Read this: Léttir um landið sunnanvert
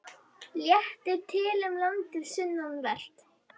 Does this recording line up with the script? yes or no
no